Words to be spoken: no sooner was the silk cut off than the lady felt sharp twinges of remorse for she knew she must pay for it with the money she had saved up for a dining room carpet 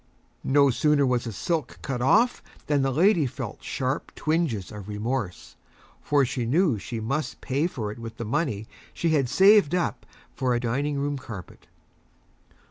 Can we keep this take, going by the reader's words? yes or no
yes